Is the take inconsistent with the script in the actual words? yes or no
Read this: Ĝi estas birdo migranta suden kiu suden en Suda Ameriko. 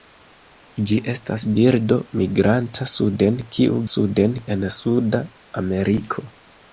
no